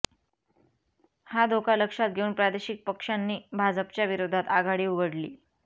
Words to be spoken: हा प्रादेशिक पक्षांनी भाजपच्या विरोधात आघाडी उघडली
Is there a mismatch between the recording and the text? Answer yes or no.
yes